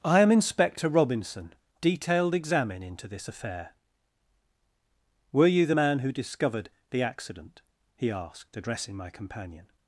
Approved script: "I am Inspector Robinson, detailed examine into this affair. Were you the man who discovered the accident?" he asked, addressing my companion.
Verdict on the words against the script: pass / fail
pass